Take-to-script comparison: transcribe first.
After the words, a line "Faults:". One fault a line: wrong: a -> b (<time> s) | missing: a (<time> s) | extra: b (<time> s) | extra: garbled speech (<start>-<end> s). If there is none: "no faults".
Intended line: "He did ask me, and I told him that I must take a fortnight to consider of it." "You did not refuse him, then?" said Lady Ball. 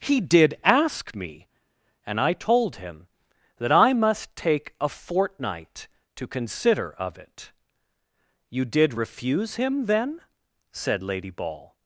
"He did ask me, and I told him that I must take a fortnight to consider of it." "You did refuse him, then?" said Lady Ball.
Faults:
missing: not (8.9 s)